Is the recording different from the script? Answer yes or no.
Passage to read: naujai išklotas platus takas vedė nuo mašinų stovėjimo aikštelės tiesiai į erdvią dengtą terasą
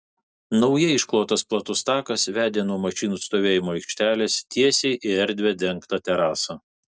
no